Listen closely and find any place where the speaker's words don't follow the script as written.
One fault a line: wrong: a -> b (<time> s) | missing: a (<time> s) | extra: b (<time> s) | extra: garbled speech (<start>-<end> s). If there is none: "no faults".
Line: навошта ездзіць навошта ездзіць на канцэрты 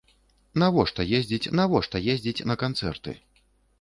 no faults